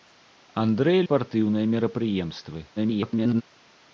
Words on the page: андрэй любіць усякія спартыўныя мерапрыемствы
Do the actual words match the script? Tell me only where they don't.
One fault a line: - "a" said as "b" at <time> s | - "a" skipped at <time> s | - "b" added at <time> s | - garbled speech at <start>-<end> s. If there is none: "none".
- "любіць усякія" skipped at 1.0 s
- garbled speech at 2.8-3.4 s